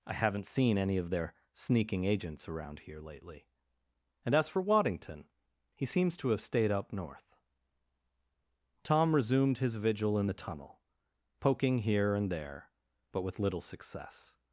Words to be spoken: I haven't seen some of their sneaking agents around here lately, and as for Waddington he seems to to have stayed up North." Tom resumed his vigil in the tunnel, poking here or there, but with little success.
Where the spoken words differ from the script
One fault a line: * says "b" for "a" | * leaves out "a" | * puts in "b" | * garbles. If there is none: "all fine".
* says "any" for "some"
* leaves out "to"
* says "and" for "or"